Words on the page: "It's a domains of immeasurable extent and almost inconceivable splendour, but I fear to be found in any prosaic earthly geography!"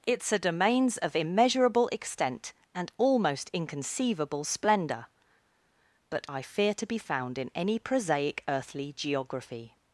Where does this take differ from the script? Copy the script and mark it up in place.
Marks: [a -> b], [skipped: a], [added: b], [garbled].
"It's a domains of immeasurable extent and almost inconceivable splendour, but I fear to be found in any prosaic earthly geography!"